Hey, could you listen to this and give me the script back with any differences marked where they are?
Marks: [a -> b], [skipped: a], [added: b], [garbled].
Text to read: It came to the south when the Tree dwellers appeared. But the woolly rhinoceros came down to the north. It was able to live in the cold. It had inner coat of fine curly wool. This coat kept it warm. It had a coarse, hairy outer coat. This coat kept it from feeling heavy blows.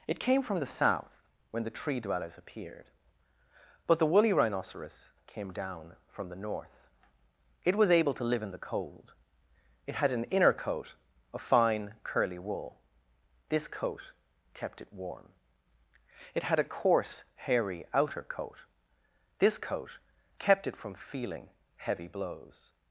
It came [to -> from] the south when the Tree dwellers appeared. But the woolly rhinoceros came down [to -> from] the north. It was able to live in the cold. It had [added: an] inner coat of fine curly wool. This coat kept it warm. It had a coarse, hairy outer coat. This coat kept it from feeling heavy blows.